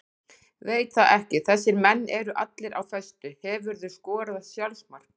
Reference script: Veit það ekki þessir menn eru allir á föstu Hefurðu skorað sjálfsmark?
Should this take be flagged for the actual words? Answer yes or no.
no